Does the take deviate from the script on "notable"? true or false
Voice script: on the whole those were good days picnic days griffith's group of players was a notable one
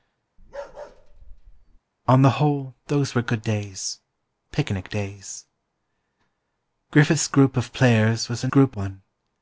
true